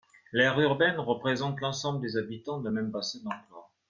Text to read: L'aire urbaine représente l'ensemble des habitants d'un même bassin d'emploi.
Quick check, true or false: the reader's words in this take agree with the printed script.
true